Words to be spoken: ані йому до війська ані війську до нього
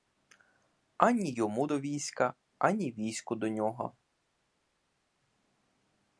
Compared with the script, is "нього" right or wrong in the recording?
right